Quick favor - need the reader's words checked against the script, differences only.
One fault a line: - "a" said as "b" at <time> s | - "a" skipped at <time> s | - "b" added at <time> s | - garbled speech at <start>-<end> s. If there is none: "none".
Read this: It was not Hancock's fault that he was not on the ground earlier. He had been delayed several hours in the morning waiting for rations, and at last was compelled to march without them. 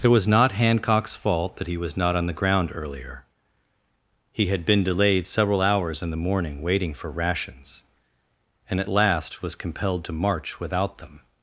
none